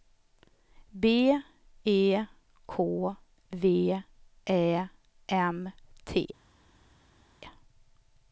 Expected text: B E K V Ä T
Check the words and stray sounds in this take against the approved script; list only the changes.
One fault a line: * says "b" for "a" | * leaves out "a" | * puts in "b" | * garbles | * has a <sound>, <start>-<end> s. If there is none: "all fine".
* puts in "M"